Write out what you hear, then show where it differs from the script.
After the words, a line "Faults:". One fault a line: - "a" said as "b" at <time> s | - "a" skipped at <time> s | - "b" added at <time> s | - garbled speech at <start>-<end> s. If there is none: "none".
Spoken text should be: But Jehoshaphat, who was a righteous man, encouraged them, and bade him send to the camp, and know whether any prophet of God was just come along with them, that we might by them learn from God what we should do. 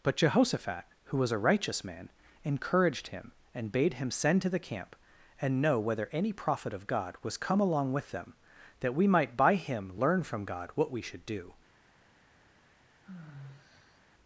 But Jehoshaphat, who was a righteous man, encouraged him, and bade him send to the camp, and know whether any prophet of God was come along with them, that we might by him learn from God what we should do.
Faults:
- "them" said as "him" at 3.1 s
- "just" skipped at 7.4 s
- "them" said as "him" at 9.6 s